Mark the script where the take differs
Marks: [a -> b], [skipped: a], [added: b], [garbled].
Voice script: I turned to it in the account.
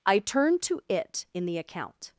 I turned to it in the account.